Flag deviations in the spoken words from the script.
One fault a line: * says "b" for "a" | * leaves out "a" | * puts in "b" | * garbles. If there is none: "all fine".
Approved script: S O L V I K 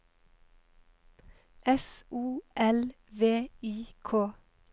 all fine